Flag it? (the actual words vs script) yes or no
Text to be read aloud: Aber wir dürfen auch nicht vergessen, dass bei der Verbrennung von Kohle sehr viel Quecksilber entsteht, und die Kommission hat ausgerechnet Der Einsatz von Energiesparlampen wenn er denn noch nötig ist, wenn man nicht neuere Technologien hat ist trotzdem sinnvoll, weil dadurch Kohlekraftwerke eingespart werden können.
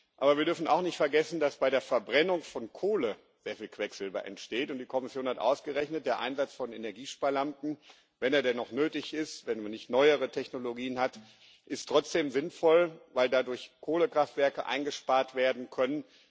no